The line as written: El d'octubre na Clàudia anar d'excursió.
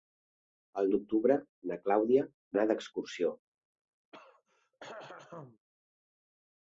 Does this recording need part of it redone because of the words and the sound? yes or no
yes